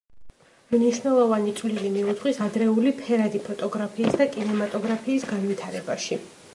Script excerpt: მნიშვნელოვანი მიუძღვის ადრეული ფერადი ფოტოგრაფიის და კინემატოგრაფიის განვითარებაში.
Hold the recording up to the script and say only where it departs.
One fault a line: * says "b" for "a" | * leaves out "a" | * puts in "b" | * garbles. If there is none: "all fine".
* puts in "წვლილი"